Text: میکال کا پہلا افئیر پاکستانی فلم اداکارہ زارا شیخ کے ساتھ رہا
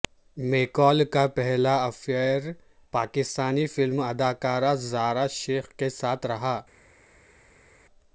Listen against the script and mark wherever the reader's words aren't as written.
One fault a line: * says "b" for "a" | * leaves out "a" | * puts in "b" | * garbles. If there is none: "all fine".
all fine